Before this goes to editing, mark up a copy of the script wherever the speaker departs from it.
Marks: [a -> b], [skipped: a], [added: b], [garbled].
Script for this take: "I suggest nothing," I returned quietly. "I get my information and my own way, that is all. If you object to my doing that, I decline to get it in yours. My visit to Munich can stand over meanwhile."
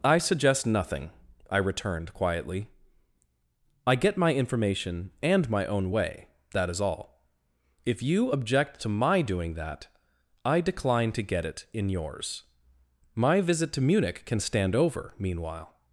"I suggest nothing," I returned quietly. "I get my information and my own way, that is all. If you object to my doing that, I decline to get it in yours. My visit to Munich can stand over meanwhile."